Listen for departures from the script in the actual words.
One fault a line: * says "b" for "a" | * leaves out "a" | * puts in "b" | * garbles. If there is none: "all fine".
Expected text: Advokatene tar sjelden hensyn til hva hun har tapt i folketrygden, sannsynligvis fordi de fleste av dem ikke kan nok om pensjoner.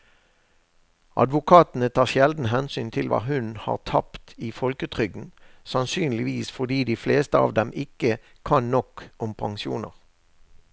all fine